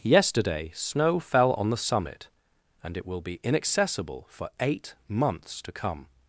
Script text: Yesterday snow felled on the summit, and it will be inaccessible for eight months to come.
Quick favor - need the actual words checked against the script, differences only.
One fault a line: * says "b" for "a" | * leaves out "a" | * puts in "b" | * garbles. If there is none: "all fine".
* says "fell" for "felled"